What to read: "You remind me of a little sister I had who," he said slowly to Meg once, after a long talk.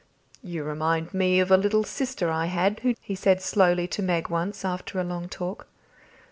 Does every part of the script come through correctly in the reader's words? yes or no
yes